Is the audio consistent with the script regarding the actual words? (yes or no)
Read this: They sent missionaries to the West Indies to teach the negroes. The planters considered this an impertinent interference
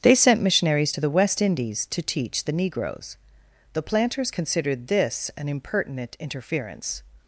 yes